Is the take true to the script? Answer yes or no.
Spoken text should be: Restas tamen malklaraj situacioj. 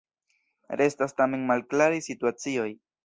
yes